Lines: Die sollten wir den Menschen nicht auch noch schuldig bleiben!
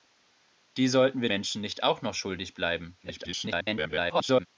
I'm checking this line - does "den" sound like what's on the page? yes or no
no